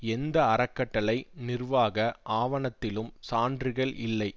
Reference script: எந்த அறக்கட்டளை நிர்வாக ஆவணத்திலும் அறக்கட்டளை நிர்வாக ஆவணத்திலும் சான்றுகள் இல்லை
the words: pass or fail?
fail